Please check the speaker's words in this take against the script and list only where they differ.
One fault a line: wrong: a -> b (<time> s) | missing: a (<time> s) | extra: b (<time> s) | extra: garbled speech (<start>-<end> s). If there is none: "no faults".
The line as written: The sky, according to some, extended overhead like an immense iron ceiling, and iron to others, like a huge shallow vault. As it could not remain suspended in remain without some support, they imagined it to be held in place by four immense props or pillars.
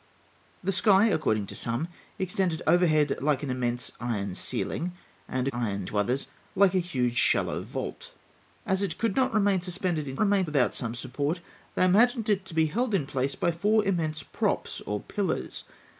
no faults